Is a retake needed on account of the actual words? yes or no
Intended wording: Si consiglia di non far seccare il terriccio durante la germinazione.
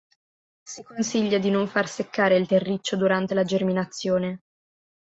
no